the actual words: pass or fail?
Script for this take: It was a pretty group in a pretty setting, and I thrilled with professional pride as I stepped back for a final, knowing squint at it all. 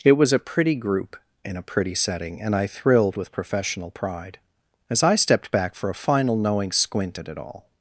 pass